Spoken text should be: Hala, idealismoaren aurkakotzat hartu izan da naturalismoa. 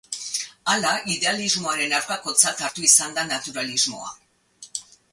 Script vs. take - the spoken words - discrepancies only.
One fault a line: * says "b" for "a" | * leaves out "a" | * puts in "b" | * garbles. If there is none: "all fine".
all fine